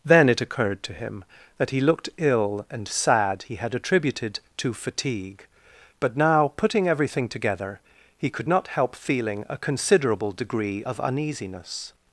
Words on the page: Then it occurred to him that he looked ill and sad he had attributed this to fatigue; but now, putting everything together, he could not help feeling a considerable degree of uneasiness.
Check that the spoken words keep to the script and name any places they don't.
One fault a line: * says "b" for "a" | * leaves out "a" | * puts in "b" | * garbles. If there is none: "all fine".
* leaves out "this"